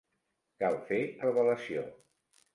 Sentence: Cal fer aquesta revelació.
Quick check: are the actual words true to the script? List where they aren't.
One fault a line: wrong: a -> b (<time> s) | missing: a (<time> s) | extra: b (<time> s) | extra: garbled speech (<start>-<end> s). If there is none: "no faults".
missing: aquesta (1.0 s)